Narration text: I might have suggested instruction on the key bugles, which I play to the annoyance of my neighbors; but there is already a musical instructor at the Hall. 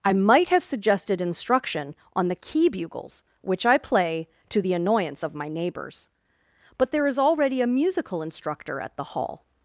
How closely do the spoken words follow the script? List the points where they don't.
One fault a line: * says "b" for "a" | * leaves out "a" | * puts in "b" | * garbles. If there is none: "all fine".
all fine